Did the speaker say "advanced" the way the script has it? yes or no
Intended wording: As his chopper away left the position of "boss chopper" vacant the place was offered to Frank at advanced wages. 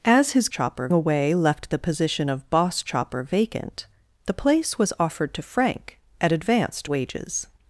yes